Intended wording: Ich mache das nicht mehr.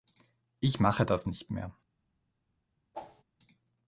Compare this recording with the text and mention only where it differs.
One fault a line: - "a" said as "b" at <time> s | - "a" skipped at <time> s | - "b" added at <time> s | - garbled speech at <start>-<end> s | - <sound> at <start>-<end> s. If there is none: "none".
- whoosh at 2.9-3.2 s